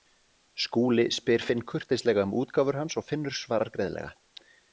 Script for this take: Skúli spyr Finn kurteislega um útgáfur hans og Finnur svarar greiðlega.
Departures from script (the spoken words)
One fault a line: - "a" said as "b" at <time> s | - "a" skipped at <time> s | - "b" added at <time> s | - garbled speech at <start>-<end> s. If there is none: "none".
none